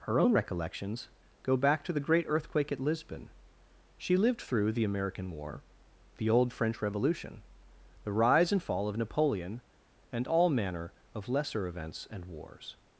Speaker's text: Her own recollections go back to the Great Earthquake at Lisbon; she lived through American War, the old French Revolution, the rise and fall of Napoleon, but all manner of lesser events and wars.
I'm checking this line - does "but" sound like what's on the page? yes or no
no